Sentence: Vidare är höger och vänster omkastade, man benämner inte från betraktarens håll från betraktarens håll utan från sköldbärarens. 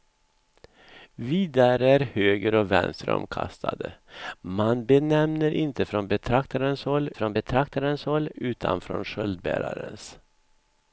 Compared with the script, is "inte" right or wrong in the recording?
right